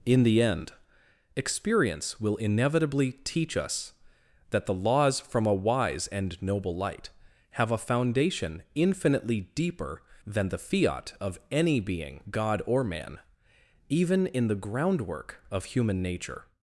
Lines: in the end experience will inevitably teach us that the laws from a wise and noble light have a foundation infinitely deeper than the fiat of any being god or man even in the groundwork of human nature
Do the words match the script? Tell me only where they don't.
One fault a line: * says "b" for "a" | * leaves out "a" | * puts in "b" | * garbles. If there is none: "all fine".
all fine